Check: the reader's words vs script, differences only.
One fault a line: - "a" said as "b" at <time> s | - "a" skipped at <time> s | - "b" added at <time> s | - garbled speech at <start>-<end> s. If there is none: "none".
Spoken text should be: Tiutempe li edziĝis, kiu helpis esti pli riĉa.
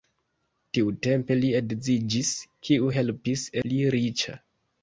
- "esti" skipped at 3.5 s